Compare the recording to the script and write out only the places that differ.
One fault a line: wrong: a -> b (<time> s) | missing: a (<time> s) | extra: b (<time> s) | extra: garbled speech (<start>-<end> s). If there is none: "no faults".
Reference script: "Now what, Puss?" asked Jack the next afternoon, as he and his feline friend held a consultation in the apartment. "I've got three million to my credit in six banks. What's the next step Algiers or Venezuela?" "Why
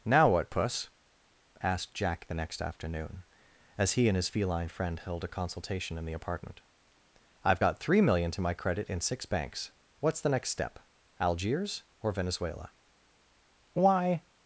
no faults